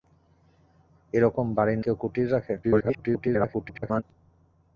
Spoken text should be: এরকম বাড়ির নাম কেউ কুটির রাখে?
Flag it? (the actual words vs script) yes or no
yes